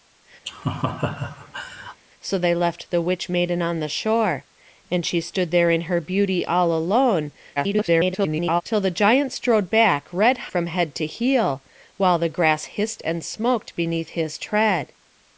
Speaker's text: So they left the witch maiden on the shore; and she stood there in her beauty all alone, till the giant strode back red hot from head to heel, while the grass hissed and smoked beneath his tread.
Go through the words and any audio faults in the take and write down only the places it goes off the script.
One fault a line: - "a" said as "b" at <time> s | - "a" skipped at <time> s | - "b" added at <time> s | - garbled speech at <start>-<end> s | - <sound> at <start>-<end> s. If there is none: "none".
- laugh at 0.5-2.0 s
- garbled speech at 7.6-8.6 s
- "hot" skipped at 10.4 s